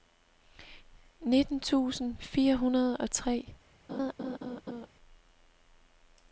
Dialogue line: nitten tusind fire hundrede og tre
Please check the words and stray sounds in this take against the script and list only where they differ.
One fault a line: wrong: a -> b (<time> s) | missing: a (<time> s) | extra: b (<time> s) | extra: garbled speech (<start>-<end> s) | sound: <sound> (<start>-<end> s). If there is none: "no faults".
sound: laugh (3.9-4.9 s)